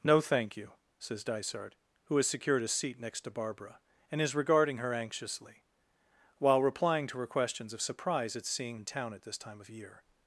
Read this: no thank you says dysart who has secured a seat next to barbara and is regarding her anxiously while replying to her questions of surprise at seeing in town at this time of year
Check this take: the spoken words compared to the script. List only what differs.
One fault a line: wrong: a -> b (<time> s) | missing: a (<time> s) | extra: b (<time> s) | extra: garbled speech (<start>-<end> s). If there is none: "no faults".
no faults